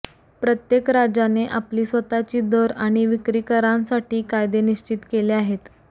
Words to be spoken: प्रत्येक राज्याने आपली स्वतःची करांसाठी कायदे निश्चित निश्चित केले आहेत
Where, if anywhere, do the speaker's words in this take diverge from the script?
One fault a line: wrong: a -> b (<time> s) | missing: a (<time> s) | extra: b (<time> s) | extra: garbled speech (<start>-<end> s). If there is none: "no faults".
extra: दर आणि विक्री (2.4 s)
missing: निश्चित (5.0 s)